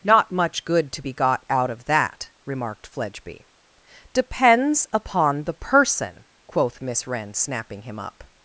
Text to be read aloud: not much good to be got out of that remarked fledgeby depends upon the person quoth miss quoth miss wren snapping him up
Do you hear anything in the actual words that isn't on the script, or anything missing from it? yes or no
yes